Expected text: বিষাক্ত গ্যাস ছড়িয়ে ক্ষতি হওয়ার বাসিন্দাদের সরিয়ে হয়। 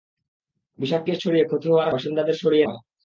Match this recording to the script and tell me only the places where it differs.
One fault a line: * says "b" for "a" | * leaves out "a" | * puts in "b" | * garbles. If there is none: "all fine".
all fine